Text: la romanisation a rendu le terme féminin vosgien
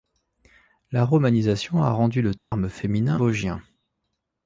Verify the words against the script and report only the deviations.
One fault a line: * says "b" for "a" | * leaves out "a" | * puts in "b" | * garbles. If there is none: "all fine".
all fine